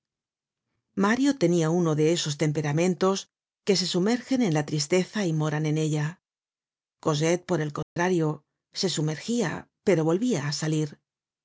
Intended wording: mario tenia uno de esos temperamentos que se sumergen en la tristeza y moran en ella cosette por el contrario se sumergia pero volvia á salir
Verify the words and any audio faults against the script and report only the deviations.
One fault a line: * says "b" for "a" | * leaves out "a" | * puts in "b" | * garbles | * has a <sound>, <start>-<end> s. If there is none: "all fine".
* has a dropout, 7.8-8.0 s